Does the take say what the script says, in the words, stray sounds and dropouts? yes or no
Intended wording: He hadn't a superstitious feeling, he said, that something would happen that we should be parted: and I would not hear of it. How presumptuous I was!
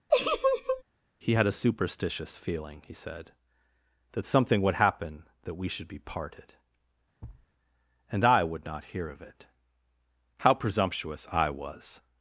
no